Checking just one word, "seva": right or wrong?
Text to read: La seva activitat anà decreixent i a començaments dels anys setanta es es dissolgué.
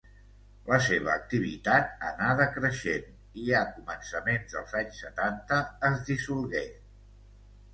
right